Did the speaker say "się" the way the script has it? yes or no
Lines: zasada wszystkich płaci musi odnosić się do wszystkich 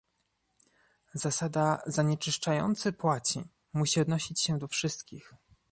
yes